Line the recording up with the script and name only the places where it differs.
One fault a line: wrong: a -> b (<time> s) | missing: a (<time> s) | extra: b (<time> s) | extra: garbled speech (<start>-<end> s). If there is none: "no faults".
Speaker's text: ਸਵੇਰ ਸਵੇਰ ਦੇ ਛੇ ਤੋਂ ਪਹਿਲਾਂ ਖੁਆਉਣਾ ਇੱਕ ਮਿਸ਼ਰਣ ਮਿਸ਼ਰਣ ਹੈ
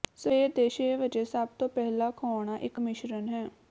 missing: ਸਵੇਰ (0.5 s)
extra: ਵਜੇ ਸਭ (1.0 s)
missing: ਮਿਸ਼ਰਣ (3.3 s)